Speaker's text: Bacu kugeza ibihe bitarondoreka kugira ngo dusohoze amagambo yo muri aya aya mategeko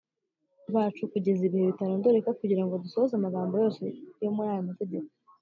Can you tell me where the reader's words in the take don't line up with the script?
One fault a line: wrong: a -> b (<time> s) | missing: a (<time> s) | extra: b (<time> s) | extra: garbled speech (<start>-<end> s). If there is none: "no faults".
extra: yose (3.6 s)
missing: aya (4.7 s)